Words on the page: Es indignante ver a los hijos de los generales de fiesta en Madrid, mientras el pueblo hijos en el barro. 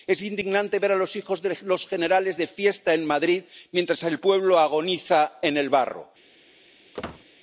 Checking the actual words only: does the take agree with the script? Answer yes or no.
no